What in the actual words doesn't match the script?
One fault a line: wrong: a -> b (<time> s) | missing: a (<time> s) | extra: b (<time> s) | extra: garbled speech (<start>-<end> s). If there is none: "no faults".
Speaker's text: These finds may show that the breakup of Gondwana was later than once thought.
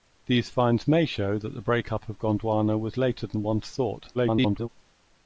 extra: garbled speech (4.1-4.7 s)